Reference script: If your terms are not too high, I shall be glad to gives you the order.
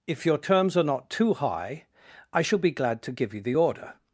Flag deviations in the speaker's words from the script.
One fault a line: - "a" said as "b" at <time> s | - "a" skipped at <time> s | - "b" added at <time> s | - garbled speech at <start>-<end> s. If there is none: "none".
- "gives" said as "give" at 3.1 s